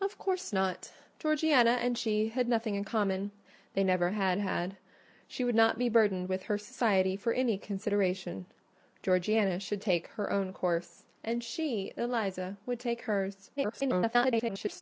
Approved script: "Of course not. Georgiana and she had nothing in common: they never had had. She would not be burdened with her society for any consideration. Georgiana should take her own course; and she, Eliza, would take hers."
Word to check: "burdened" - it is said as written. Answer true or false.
true